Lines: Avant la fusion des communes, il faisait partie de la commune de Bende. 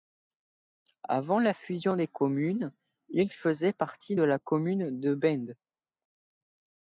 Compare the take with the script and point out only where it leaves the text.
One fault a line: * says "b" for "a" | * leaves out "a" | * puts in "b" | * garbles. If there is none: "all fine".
all fine